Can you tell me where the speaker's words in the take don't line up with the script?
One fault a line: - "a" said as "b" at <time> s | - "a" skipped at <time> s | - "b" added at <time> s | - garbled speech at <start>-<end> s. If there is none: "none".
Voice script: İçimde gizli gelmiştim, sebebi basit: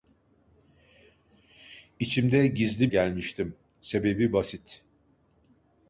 none